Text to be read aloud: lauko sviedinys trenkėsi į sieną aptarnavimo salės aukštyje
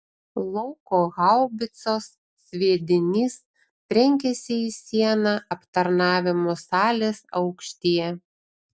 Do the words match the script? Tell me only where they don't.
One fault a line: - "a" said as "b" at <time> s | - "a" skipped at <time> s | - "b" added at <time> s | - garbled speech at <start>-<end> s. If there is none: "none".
- "haubicos" added at 1.2 s